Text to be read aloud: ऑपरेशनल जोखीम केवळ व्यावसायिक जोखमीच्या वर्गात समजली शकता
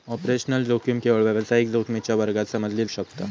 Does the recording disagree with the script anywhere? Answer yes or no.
no